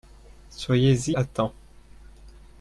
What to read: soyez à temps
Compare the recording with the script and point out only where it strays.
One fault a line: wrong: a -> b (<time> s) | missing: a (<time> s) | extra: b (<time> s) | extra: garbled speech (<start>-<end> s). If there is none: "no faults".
no faults